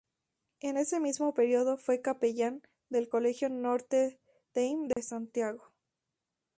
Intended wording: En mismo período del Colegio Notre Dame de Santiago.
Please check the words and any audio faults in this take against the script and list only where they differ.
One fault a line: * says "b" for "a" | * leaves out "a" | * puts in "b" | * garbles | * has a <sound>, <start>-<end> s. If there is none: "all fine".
* puts in "ese"
* puts in "fue capellán"
* has a dropout, 4.9-5.0 s